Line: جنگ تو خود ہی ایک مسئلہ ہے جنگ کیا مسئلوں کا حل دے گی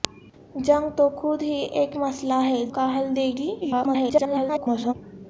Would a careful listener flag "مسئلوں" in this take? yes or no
yes